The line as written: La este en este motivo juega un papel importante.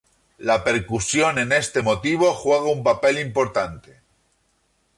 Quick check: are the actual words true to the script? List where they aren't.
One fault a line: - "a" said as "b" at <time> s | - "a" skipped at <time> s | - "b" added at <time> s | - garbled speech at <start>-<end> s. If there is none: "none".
- "este" said as "percusión" at 0.6 s